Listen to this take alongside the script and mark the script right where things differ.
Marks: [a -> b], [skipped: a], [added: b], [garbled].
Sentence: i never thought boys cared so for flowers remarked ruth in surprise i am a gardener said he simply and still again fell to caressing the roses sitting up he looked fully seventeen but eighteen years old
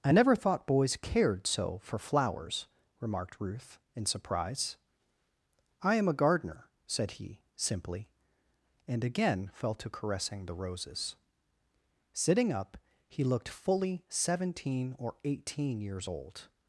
i never thought boys cared so for flowers remarked ruth in surprise i am a gardener said he simply and [skipped: still] again fell to caressing the roses sitting up he looked fully seventeen [but -> or] eighteen years old